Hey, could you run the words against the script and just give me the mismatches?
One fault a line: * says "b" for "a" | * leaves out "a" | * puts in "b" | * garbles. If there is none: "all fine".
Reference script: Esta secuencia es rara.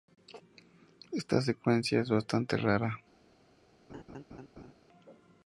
* puts in "bastante"